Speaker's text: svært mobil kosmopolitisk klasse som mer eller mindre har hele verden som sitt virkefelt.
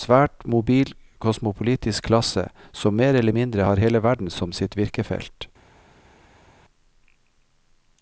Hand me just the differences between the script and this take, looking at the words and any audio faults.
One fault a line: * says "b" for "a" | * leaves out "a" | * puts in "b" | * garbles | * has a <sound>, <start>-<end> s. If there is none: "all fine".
all fine